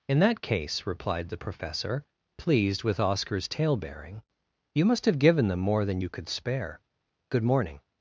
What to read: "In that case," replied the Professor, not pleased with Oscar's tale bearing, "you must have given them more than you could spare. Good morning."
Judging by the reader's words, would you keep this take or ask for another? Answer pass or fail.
fail